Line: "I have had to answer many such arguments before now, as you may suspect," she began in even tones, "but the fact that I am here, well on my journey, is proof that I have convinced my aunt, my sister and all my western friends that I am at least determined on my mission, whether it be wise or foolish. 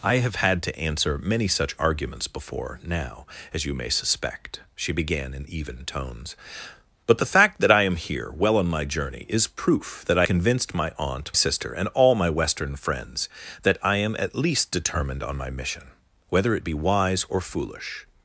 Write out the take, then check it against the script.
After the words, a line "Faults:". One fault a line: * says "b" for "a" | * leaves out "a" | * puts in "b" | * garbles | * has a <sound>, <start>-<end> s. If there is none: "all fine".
"I have had to answer many such arguments before now, as you may suspect," she began in even tones, "but the fact that I am here, well on my journey, is proof that I convinced my aunt, sister and all my western friends that I am at least determined on my mission, whether it be wise or foolish.
Faults:
* leaves out "have"
* leaves out "my"